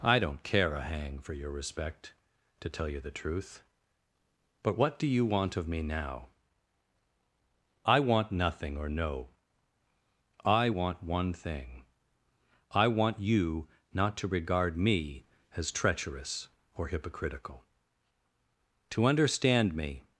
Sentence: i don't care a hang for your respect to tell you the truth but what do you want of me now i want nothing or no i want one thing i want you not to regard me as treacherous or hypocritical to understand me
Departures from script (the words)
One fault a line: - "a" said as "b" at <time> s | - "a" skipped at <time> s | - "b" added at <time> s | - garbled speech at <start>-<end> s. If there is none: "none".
none